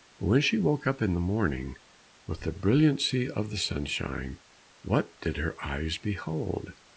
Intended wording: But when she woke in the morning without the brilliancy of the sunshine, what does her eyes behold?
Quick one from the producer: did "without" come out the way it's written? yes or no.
no